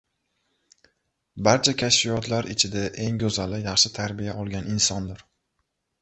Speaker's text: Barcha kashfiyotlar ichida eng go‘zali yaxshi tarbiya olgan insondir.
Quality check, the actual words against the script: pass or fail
pass